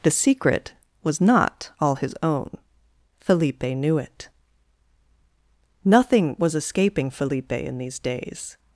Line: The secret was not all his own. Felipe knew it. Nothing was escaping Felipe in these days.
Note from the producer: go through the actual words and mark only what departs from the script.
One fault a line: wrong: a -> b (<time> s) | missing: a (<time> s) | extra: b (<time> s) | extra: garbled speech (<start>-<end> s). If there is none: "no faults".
no faults